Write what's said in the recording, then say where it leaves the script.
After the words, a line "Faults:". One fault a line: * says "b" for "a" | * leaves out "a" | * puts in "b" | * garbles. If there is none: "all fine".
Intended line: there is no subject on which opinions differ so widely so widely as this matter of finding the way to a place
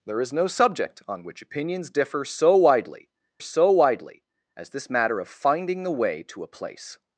there is no subject on which opinions differ so widely so widely as this matter of finding the way to a place
Faults:
all fine